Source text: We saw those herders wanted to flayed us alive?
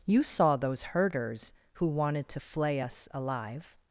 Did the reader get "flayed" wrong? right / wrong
wrong